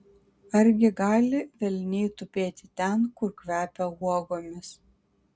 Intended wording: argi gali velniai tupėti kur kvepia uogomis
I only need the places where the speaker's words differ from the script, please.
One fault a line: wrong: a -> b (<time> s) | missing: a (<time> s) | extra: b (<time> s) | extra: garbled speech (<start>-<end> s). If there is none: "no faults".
extra: ten (2.8 s)